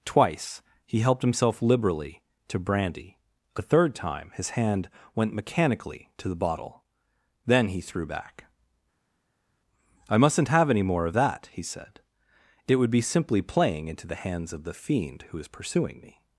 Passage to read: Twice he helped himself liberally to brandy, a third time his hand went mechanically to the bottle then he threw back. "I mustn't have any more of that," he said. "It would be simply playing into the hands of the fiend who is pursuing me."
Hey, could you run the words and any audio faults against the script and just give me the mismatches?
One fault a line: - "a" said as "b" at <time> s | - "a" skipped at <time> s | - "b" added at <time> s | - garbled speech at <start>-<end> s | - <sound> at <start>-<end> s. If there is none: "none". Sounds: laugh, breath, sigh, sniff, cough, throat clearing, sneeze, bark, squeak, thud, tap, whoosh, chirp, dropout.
none